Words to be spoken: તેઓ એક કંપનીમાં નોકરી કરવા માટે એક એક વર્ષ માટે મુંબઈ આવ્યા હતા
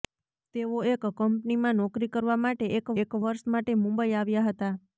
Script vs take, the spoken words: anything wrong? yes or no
no